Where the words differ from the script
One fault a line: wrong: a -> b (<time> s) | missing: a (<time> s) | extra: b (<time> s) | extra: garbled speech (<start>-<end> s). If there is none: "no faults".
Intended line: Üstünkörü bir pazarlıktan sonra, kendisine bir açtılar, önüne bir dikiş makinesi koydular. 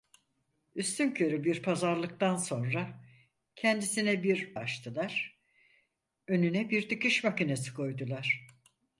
no faults